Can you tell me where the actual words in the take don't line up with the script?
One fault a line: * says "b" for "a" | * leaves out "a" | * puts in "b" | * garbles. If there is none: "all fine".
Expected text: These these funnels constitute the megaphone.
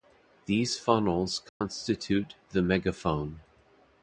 * leaves out "these"